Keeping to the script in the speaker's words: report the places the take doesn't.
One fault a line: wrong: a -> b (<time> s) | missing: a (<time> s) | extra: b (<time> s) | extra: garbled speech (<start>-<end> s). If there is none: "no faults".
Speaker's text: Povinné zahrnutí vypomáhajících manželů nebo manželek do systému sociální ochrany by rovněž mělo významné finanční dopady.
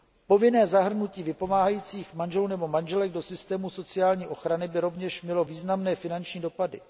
no faults